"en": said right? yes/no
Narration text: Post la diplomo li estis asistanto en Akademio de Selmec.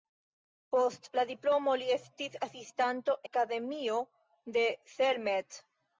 no